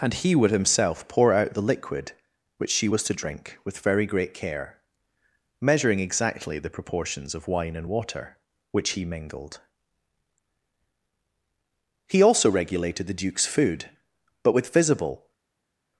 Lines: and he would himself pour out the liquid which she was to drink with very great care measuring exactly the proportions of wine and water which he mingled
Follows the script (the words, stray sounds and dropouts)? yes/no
no